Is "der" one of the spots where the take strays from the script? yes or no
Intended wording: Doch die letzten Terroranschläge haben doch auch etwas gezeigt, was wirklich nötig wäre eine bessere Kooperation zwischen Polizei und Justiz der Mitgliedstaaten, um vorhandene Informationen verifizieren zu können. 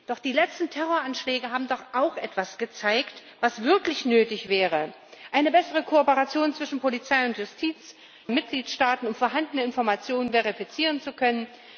yes